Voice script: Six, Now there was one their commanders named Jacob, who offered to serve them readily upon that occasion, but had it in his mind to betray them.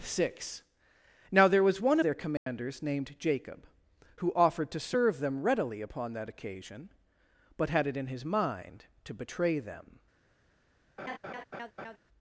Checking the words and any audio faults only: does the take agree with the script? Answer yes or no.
no